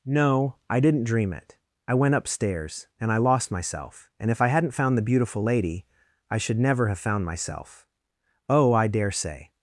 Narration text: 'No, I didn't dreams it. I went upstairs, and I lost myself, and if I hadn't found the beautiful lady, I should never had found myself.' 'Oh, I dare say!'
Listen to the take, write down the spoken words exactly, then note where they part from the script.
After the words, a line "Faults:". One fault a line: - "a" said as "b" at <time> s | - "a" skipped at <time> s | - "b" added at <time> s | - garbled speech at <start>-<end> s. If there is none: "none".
'No, I didn't dream it. I went upstairs, and I lost myself, and if I hadn't found the beautiful lady, I should never have found myself.' 'Oh, I dare say!'
Faults:
- "dreams" said as "dream" at 1.0 s
- "had" said as "have" at 6.9 s